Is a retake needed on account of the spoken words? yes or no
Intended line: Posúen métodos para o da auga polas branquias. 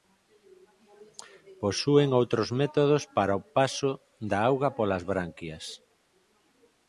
yes